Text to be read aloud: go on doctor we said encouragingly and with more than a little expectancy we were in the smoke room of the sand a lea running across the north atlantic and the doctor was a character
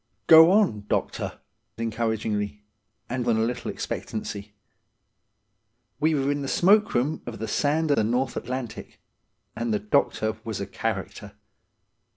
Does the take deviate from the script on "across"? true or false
true